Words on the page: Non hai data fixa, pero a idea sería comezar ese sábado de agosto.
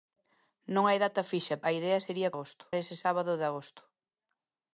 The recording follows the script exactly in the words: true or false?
false